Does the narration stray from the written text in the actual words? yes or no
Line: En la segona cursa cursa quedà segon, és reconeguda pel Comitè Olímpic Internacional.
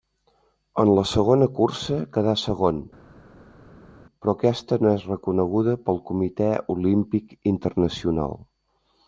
yes